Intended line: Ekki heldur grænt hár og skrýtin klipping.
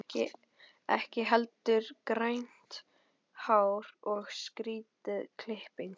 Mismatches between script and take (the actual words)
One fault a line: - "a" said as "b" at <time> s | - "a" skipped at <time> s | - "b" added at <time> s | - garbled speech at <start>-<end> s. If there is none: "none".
none